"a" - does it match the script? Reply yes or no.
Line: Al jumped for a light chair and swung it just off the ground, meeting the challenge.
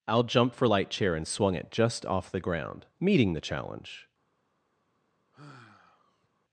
no